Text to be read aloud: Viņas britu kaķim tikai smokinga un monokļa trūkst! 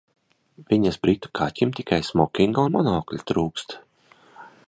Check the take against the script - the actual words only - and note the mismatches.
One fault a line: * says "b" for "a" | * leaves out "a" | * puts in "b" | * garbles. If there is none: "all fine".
all fine